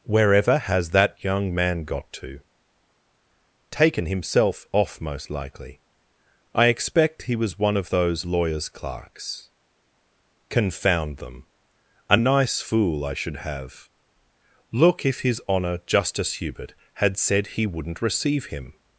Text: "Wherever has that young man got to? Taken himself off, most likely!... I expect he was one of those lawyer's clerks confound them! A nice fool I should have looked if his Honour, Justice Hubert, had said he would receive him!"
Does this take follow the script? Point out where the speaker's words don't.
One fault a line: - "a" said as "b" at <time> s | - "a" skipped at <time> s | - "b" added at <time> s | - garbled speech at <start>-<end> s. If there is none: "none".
- "looked" said as "look" at 14.7 s
- "would" said as "wouldn't" at 17.6 s